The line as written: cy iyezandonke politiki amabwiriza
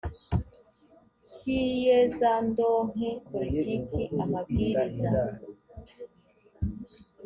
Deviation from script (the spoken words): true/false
false